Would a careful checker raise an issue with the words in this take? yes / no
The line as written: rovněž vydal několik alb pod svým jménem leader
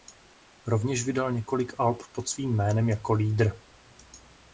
yes